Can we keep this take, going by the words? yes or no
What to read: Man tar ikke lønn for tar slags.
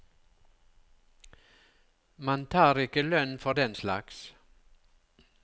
no